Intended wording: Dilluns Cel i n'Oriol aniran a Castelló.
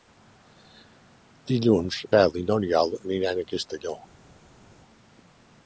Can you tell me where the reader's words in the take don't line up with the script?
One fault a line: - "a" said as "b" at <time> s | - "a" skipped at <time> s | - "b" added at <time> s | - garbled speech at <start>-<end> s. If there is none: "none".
none